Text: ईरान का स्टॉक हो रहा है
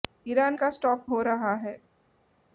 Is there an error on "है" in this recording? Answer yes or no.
no